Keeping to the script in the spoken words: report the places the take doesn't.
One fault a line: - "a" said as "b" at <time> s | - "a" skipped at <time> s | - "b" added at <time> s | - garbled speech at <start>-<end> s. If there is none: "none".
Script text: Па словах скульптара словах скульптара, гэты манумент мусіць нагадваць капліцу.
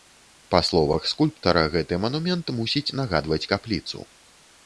- "словах скульптара" skipped at 1.6 s